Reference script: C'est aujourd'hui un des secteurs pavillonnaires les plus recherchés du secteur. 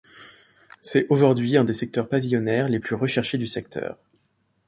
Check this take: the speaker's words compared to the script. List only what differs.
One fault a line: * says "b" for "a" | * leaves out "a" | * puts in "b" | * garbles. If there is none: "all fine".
all fine